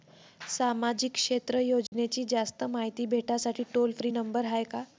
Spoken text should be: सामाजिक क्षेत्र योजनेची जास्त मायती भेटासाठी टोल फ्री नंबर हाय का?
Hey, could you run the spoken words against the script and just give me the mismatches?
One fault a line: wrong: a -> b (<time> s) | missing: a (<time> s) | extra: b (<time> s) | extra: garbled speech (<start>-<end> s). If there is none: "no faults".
no faults